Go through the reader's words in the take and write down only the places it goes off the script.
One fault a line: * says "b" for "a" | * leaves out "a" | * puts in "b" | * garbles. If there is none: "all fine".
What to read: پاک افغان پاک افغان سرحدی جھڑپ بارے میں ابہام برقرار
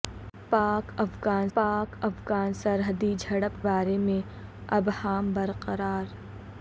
all fine